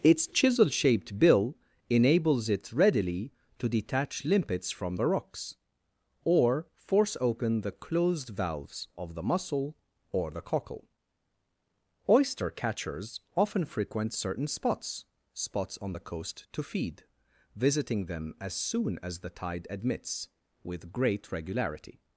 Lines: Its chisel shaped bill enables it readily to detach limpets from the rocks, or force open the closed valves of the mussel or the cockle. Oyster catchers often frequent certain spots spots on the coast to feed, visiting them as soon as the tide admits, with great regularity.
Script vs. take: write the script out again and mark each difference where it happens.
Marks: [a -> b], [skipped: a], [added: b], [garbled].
Its chisel shaped bill enables it readily to detach limpets from the rocks, or force open the closed valves of the mussel or the cockle. Oyster catchers often frequent certain spots spots on the coast to feed, visiting them as soon as the tide admits, with great regularity.